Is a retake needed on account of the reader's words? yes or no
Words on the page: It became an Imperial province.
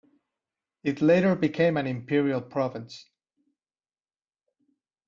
yes